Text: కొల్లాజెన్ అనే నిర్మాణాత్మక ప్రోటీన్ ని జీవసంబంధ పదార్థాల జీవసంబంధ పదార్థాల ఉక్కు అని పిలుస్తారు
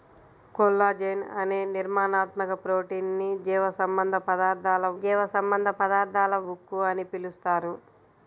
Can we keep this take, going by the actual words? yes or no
yes